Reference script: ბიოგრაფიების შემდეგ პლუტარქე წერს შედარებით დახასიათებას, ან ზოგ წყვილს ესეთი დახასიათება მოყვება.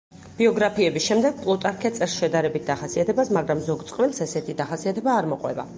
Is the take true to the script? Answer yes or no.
no